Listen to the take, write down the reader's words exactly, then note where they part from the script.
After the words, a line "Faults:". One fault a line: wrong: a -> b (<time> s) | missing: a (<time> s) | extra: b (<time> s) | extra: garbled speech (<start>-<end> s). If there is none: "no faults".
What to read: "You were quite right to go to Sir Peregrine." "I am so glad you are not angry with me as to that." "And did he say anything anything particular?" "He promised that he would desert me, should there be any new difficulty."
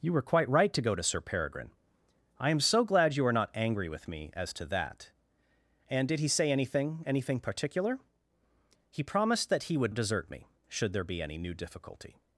"You were quite right to go to Sir Peregrine." "I am so glad you are not angry with me as to that." "And did he say anything anything particular?" "He promised that he would desert me, should there be any new difficulty."
Faults:
no faults